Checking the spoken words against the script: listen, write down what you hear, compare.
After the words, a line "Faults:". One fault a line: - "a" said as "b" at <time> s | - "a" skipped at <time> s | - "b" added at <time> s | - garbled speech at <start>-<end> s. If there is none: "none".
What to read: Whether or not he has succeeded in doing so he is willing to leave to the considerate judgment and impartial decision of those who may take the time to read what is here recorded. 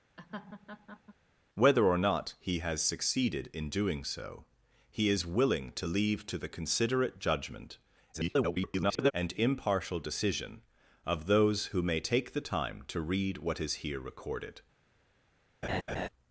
Whether or not he has succeeded in doing so he is willing to leave to the considerate judgment [garbled] and impartial decision of those who may take the time to read what is here recorded.
Faults:
- garbled speech at 8.1-9.1 s